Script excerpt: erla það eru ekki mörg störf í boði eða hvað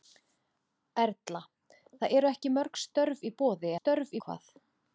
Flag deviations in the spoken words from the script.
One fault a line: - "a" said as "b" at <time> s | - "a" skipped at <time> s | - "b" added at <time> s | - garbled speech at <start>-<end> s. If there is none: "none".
- "eða" said as "störf" at 3.8 s